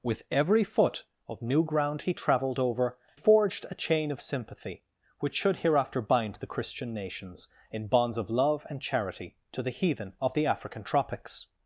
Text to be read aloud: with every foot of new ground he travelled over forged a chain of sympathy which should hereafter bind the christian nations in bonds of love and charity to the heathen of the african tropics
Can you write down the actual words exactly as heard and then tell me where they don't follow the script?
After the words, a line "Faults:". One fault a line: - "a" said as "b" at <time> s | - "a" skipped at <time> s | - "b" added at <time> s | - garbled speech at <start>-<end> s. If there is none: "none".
with every foot of new ground he travelled over forged a chain of sympathy which should hereafter bind the christian nations in bonds of love and charity to the heathen of the african tropics
Faults:
none